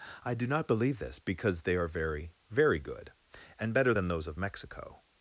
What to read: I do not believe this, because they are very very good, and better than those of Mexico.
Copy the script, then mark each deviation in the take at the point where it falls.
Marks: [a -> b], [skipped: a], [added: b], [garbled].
I do not believe this, because they are very very good, and better than those of Mexico.